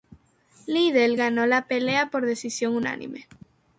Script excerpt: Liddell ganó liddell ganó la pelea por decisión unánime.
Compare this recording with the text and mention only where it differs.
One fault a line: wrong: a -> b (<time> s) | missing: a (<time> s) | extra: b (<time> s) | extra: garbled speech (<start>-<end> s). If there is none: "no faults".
missing: liddell ganó (1.4 s)